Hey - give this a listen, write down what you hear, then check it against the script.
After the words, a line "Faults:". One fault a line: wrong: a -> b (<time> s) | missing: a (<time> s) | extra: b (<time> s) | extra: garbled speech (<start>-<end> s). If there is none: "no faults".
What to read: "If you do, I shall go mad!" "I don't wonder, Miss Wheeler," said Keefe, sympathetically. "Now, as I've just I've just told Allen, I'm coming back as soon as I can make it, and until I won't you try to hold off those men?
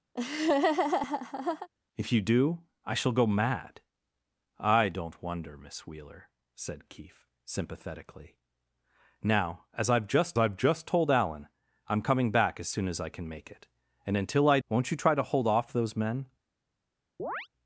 "If you do, I shall go mad!" "I don't wonder, Miss Wheeler," said Keefe, sympathetically. "Now, as I've just I've just told Allen, I'm coming back as soon as I can make it, and until I won't you try to hold off those men?
Faults:
no faults